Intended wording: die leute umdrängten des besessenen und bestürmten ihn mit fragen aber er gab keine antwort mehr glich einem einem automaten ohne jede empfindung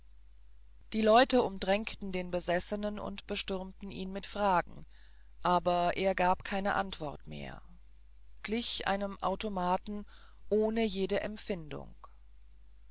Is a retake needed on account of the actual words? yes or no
yes